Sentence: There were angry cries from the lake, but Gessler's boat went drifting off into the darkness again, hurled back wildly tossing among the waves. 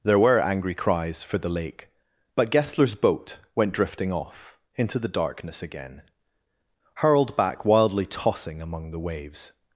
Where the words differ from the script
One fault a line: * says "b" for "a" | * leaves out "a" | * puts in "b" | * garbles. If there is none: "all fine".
* says "for" for "from"